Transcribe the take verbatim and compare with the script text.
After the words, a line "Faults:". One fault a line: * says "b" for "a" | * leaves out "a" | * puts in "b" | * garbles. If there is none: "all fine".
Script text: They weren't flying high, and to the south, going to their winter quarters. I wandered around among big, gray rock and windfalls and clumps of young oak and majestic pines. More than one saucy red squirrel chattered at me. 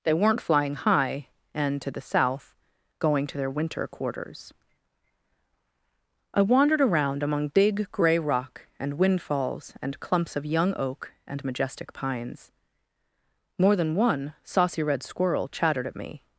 They weren't flying high, and to the south, going to their winter quarters. I wandered around among big, gray rock and windfalls and clumps of young oak and majestic pines. More than one saucy red squirrel chattered at me.
Faults:
all fine